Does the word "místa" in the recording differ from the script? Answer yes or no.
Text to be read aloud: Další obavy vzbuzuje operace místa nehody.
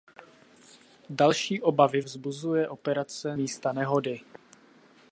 no